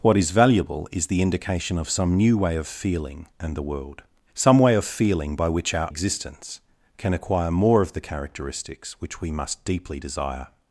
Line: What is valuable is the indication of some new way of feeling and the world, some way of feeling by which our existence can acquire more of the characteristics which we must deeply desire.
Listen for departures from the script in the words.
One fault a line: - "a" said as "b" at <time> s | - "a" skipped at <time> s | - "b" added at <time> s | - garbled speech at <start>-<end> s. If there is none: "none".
none